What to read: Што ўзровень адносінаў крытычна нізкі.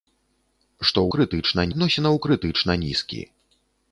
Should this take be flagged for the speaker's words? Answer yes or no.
yes